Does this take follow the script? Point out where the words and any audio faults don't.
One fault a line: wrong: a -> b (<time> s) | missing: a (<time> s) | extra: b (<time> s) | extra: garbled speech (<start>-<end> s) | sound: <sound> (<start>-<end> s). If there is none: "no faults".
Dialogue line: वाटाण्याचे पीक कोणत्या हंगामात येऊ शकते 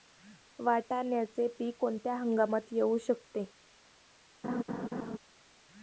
sound: laugh (4.4-5.2 s)